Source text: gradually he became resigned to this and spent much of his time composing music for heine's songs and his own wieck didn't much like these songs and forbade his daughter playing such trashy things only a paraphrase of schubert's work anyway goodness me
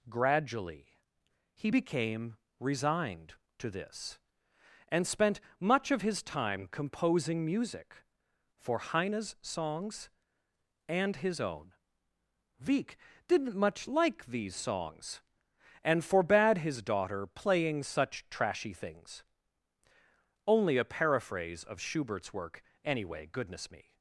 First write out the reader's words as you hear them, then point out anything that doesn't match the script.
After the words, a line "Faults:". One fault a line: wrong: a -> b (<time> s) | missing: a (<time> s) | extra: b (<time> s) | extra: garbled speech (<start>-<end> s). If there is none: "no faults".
gradually he became resigned to this and spent much of his time composing music for heine's songs and his own wieck didn't much like these songs and forbade his daughter playing such trashy things only a paraphrase of schubert's work anyway goodness me
Faults:
no faults